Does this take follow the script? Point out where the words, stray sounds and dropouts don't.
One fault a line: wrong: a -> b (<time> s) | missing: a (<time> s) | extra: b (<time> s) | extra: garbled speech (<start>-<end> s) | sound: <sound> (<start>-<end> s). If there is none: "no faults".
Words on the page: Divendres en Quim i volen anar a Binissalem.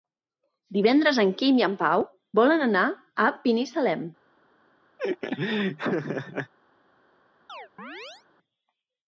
extra: en Pau (1.7 s)
sound: laugh (5.0-6.5 s)
sound: chirp (7.5-8.3 s)